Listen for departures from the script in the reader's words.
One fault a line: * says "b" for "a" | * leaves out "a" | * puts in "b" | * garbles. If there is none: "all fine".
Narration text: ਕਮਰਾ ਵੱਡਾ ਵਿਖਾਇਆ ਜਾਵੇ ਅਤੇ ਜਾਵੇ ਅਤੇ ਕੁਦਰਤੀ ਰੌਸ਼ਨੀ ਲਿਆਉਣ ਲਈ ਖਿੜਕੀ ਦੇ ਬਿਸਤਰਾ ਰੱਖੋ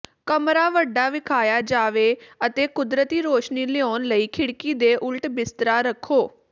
* leaves out "ਜਾਵੇ ਅਤੇ"
* puts in "ਉਲਟ"